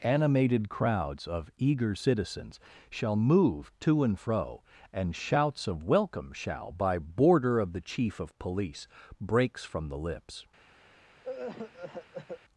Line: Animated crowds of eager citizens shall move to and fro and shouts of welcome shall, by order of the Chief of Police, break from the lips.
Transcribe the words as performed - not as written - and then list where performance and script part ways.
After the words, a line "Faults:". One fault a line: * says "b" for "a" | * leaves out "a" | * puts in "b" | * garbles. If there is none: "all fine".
Animated crowds of eager citizens shall move to and fro and shouts of welcome shall, by border of the Chief of Police, breaks from the lips.
Faults:
* says "border" for "order"
* says "breaks" for "break"